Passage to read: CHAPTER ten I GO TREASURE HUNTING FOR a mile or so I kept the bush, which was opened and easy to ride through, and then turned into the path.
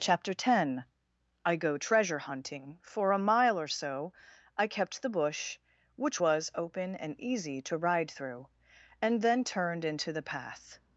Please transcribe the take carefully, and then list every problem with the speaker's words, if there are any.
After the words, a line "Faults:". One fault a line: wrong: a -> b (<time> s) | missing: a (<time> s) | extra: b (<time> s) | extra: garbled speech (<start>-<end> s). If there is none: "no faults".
CHAPTER ten I GO TREASURE HUNTING FOR a mile or so I kept the bush, which was open and easy to ride through, and then turned into the path.
Faults:
wrong: opened -> open (6.6 s)